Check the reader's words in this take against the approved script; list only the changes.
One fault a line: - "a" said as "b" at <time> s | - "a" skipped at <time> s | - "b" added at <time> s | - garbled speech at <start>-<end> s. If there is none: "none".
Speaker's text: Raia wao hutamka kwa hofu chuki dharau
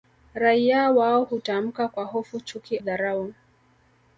none